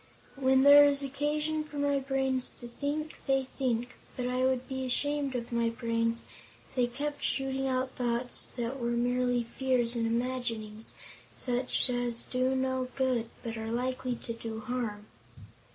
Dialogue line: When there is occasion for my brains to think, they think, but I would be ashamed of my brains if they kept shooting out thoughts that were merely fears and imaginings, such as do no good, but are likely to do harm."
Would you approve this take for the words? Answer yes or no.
yes